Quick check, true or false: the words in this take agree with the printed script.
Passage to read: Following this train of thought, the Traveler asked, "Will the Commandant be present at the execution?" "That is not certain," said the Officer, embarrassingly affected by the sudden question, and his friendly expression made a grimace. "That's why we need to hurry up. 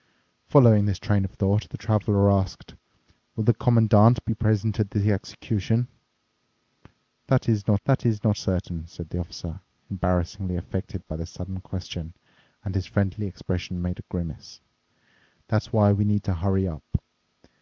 false